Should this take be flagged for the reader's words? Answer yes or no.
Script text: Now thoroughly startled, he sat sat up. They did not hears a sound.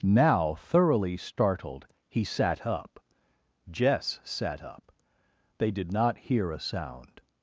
yes